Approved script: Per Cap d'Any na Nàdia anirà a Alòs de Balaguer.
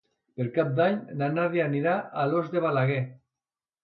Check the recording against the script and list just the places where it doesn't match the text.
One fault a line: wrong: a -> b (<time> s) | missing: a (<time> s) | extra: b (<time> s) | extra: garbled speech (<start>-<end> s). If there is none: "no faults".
no faults